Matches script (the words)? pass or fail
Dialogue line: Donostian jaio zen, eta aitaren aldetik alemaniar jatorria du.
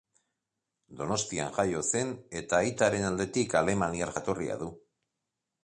pass